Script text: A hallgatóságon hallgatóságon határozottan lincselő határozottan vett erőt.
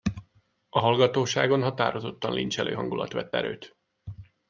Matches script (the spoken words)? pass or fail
fail